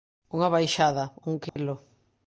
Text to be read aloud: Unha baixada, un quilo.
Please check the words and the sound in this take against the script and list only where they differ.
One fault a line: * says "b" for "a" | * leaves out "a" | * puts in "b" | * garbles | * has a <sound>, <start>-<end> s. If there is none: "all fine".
* has a dropout, 1.5-1.6 s